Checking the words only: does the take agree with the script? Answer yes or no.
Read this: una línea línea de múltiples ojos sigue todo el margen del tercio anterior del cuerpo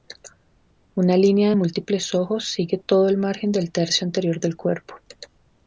no